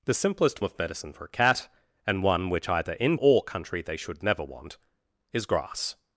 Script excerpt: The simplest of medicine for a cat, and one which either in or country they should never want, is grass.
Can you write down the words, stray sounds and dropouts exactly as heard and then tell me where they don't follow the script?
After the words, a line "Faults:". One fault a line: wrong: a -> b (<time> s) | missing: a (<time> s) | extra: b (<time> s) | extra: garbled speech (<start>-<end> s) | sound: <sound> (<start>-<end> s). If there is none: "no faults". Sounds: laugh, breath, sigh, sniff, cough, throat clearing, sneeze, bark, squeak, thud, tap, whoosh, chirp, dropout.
The simplest of medicine for a cat, and one which either in or country they should never want, is grass.
Faults:
no faults